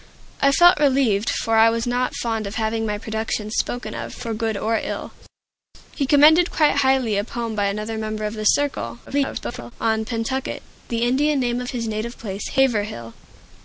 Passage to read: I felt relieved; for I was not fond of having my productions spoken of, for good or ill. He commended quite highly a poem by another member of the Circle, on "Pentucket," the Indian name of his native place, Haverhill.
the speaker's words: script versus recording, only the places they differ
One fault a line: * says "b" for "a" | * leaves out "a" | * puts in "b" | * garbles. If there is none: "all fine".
* garbles